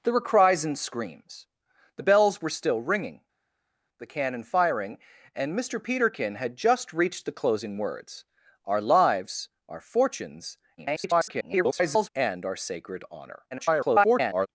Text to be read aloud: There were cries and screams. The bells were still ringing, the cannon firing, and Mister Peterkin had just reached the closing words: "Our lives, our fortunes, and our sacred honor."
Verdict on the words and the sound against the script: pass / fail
fail